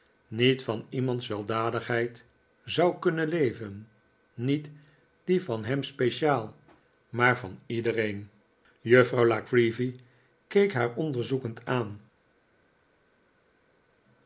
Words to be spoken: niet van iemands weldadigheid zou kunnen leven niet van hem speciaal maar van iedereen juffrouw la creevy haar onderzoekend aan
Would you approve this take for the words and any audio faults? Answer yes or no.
no